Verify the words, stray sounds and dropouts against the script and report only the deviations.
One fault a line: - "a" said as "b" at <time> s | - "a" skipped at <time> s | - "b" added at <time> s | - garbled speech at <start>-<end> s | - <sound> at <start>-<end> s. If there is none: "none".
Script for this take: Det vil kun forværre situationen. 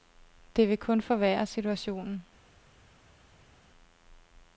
none